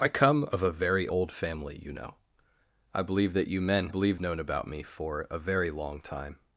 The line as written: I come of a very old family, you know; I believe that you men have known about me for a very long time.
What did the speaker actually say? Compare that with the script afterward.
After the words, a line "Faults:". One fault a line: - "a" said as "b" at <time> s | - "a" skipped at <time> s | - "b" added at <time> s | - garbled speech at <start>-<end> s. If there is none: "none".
I come of a very old family, you know; I believe that you men believe known about me for a very long time.
Faults:
- "have" said as "believe" at 3.9 s